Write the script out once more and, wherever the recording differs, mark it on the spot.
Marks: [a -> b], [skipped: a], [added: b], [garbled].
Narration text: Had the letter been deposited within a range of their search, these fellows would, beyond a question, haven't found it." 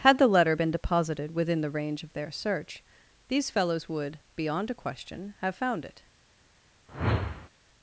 Had the letter been deposited within [a -> the] range of their search, these fellows would, beyond a question, [haven't -> have] found it."